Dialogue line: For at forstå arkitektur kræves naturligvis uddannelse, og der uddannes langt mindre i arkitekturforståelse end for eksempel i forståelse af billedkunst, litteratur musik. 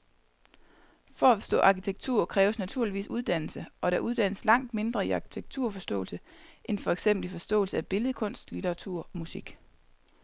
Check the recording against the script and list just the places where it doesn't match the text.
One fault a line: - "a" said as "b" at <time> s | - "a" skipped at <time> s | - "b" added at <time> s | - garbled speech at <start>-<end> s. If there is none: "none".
none